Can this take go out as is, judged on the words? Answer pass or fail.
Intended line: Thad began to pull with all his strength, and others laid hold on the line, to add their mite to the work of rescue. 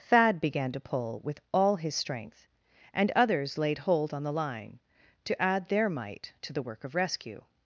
pass